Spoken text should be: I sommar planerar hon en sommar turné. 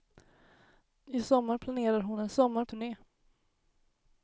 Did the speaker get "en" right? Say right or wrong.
right